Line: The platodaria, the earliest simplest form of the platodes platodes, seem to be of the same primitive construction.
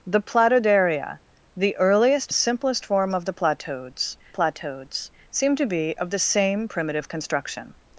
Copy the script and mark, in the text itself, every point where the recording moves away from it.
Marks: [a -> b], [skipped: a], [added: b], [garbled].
The platodaria, the earliest simplest form of the platodes platodes, seem to be of the same primitive construction.